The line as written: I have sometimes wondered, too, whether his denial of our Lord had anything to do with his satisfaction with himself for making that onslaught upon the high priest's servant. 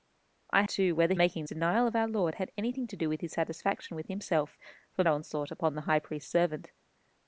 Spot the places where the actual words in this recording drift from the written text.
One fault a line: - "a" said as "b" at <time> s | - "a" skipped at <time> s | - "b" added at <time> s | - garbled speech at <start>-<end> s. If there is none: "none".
- "have sometimes wondered" skipped at 0.6 s
- "his" said as "making" at 1.1 s
- "making that" skipped at 5.0 s